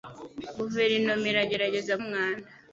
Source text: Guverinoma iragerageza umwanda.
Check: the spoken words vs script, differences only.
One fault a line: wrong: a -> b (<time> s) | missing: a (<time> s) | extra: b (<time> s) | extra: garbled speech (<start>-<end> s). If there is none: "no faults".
no faults